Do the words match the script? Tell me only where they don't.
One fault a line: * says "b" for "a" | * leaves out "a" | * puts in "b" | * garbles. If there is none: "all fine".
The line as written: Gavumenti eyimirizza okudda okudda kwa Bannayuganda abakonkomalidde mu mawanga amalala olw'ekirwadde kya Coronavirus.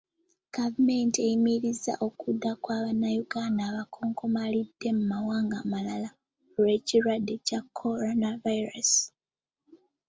* leaves out "okudda"